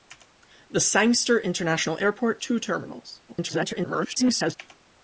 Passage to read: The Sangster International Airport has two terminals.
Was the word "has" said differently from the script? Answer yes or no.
yes